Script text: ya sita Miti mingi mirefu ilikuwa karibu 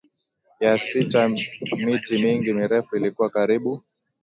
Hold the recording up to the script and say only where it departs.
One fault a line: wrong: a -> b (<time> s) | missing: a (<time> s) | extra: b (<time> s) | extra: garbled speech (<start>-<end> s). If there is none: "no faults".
no faults